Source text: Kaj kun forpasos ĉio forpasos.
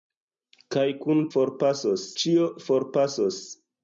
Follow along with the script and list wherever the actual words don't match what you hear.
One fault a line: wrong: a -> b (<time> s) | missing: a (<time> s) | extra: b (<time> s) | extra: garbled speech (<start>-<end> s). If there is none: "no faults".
no faults